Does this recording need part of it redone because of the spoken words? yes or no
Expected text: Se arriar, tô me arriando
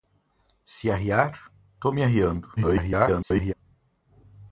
yes